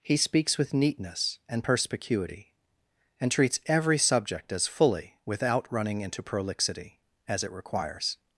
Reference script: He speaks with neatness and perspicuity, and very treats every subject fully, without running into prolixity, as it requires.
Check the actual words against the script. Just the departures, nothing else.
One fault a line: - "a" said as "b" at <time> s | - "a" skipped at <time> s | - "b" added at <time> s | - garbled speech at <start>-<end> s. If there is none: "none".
- "very" skipped at 3.3 s
- "as" added at 4.5 s